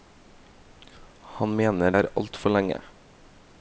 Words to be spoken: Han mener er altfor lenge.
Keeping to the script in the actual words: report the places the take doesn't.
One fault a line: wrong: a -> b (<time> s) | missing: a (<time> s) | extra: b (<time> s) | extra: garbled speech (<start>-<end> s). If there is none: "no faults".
no faults